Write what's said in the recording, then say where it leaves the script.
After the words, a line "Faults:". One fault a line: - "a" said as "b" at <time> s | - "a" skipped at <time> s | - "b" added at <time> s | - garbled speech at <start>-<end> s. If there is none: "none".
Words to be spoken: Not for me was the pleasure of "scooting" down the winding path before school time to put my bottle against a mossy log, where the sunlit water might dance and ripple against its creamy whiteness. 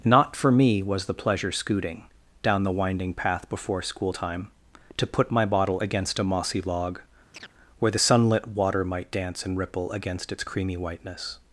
Not for me was the pleasure "scooting" down the winding path before school time to put my bottle against a mossy log, where the sunlit water might dance and ripple against its creamy whiteness.
Faults:
- "of" skipped at 1.5 s